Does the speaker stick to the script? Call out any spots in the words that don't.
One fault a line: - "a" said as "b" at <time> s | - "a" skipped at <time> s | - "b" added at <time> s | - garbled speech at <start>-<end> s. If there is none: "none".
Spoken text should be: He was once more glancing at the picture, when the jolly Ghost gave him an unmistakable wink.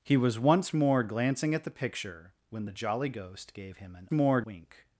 - "unmistakable" said as "more" at 4.1 s